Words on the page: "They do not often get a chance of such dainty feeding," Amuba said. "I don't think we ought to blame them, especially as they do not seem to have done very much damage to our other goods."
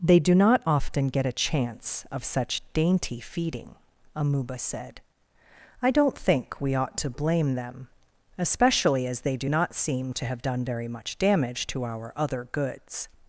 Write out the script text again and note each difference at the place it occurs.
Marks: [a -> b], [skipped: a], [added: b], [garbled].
"They do not often get a chance of such dainty feeding," Amuba said. "I don't think we ought to blame them, especially as they do not seem to have done very much damage to our other goods."